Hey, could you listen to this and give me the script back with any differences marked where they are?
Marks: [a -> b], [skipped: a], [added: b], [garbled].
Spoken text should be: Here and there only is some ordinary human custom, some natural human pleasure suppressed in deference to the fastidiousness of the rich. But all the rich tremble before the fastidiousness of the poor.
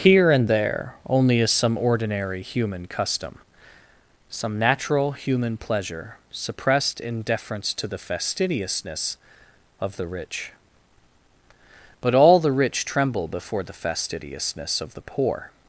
Here and there only is some ordinary human custom, some natural human pleasure suppressed in deference to the fastidiousness of the rich. But all the rich tremble before the fastidiousness of the poor.